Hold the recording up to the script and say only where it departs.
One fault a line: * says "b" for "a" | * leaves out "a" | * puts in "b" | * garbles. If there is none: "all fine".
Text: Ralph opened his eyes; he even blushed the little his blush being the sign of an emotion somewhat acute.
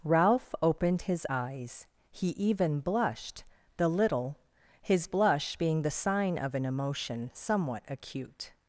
all fine